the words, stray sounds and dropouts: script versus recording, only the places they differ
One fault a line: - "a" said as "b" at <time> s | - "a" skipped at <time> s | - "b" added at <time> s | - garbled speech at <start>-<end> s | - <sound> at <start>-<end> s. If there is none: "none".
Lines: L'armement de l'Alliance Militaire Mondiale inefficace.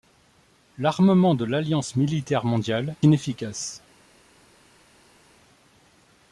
none